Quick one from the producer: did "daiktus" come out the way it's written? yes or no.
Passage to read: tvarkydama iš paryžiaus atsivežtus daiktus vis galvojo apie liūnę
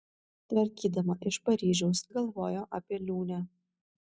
no